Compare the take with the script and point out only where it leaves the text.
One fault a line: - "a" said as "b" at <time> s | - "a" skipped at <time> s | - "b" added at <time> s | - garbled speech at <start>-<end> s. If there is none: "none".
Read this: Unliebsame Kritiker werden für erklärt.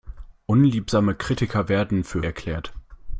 none